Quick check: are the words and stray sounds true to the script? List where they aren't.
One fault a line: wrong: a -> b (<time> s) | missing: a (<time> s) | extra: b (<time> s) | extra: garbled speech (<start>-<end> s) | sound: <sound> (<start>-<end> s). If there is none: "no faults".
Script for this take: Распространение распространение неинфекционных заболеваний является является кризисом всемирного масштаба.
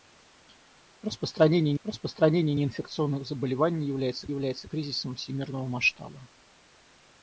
no faults